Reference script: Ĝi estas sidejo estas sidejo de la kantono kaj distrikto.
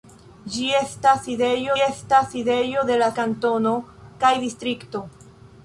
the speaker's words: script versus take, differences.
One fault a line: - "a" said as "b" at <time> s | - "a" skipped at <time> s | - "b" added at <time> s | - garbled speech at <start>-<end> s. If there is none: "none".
none